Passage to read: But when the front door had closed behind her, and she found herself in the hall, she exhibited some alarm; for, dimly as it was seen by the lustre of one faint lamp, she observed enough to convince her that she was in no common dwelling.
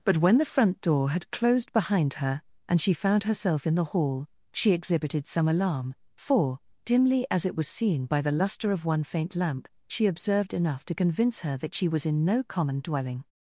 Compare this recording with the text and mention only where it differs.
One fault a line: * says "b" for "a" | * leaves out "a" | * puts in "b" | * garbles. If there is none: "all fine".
all fine